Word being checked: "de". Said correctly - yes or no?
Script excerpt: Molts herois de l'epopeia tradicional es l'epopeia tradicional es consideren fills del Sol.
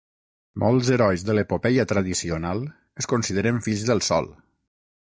yes